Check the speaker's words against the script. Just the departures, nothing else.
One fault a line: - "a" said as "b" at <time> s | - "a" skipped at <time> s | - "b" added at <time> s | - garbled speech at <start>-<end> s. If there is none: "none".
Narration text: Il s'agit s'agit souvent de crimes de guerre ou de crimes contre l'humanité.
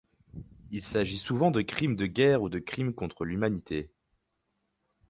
- "s'agit" skipped at 1.2 s